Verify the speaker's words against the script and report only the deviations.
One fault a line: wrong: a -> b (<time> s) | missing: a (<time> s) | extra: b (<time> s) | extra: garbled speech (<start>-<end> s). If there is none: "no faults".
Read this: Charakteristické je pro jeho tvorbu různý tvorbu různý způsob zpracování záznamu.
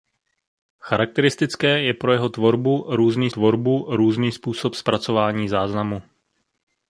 no faults